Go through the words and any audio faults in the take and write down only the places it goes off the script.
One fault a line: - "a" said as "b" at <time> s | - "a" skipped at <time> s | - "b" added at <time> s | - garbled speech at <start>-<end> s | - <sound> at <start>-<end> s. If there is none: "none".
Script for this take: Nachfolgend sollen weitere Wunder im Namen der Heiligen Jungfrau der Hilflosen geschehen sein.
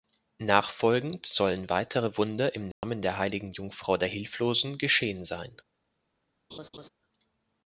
- dropout at 2.7-2.8 s
- laugh at 6.5-6.9 s